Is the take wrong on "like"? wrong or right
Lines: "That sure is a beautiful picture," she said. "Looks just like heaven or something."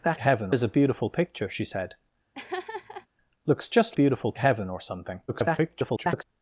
wrong